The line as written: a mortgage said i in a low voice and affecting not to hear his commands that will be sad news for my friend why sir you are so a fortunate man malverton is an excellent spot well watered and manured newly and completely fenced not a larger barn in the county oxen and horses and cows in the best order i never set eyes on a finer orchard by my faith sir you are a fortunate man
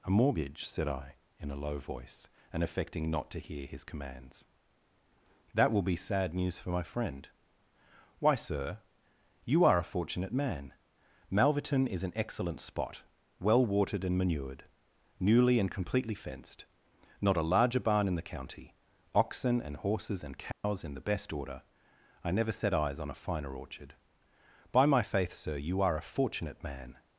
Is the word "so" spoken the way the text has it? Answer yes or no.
no